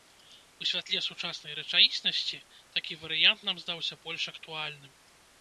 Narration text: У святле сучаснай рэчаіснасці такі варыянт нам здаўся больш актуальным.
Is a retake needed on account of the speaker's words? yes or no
no